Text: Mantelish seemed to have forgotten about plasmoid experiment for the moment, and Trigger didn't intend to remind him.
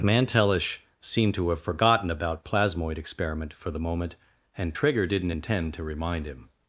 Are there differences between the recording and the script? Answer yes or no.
no